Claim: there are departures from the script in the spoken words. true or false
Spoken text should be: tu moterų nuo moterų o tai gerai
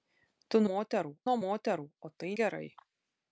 false